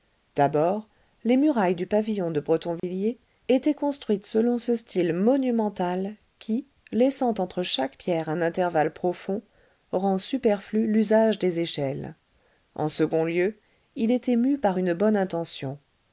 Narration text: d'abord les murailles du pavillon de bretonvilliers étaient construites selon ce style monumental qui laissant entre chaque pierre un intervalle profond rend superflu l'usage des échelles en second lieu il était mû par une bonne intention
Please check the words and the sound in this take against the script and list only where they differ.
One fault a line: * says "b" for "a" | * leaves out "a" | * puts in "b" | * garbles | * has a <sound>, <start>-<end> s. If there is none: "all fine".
* has a dropout, 2.8-2.8 s